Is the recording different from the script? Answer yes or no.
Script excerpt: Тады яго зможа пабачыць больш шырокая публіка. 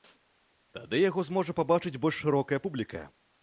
no